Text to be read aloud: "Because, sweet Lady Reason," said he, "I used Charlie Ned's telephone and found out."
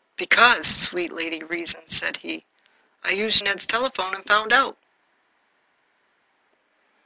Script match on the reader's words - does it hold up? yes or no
no